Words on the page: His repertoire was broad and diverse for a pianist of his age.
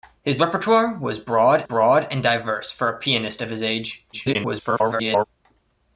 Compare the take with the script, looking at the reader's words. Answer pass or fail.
fail